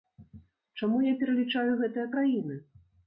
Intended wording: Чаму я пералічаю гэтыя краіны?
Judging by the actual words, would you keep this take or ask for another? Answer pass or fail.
pass